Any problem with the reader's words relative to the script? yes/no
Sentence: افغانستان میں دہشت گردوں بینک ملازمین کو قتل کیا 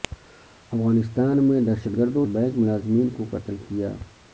no